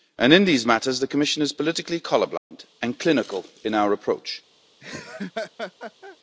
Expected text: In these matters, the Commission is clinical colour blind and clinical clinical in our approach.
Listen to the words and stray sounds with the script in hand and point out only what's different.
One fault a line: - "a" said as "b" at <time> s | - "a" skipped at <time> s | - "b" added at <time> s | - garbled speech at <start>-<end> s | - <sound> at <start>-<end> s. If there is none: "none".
- "clinical" said as "politically" at 1.5 s
- dropout at 2.4-2.5 s
- "clinical" skipped at 3.4 s
- laugh at 4.8-6.2 s